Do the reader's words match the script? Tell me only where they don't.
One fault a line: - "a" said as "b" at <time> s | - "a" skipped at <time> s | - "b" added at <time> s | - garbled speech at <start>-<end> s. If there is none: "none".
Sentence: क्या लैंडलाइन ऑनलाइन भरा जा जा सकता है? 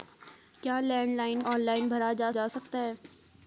none